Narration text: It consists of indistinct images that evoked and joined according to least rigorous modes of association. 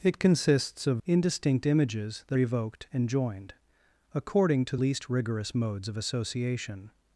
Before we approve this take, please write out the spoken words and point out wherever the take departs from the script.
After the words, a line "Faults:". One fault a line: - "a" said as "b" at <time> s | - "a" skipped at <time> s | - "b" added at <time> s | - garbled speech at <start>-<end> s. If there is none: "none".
It consists of indistinct images that evoked and joined according to least rigorous modes of association.
Faults:
none